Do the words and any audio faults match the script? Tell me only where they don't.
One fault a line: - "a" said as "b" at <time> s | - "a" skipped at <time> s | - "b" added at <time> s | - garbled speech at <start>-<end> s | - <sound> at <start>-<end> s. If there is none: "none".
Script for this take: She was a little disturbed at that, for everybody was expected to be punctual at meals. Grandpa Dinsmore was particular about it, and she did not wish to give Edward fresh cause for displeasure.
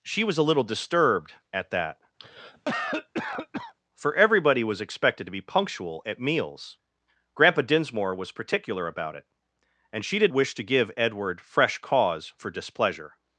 - cough at 2.2-3.7 s
- "not" skipped at 10.3 s